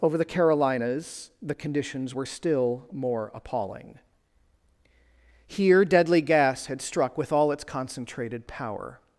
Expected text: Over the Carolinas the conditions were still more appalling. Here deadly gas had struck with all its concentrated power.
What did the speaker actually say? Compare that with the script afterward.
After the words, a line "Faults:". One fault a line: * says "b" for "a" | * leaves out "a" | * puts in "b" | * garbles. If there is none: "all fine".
Over the Carolinas the conditions were still more appalling. Here deadly gas had struck with all its concentrated power.
Faults:
all fine